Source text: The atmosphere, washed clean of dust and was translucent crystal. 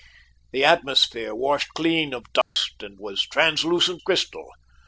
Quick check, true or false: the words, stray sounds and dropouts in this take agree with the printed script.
false